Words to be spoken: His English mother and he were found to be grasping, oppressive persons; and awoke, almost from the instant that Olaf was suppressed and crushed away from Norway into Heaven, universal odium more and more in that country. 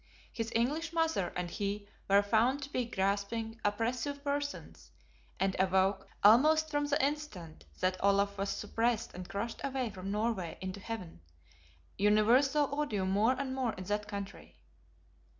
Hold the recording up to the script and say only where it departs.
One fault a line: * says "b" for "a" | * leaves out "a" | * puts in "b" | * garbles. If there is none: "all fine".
all fine